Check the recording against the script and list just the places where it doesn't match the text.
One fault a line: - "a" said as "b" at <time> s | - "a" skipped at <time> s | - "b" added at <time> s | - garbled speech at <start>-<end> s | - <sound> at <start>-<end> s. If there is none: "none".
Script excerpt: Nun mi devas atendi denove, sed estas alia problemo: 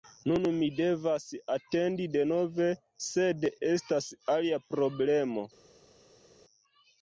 none